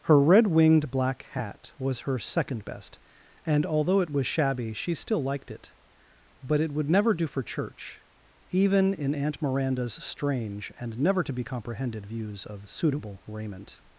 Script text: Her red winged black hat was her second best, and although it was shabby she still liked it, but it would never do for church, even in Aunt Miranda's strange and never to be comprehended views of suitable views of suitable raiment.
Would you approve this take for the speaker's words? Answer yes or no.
no